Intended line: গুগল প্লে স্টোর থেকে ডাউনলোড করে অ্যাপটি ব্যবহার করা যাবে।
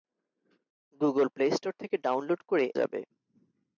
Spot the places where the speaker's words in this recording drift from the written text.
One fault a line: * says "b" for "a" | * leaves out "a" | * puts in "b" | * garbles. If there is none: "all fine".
* leaves out "অ্যাপটি ব্যবহার করা"